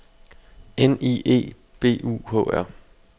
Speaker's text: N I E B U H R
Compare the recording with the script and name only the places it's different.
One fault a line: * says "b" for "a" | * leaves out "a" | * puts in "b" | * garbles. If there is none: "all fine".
all fine